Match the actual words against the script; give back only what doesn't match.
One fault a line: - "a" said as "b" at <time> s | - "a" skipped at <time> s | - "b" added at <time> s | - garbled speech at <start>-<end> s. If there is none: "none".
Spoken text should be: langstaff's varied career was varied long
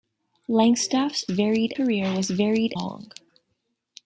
none